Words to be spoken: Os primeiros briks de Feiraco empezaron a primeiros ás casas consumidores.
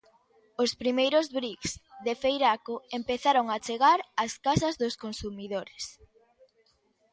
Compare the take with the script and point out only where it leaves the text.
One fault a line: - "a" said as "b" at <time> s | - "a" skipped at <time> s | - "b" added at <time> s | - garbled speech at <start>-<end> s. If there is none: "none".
- "primeiros" said as "chegar" at 3.6 s
- "dos" added at 4.8 s